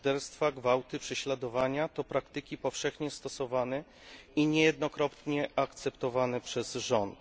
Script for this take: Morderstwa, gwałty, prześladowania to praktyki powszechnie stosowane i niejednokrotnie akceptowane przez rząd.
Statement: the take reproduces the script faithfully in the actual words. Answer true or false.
true